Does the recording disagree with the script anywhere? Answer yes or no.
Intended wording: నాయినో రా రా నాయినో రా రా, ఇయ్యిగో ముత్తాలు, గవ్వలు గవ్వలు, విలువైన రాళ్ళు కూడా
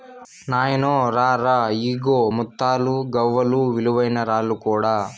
yes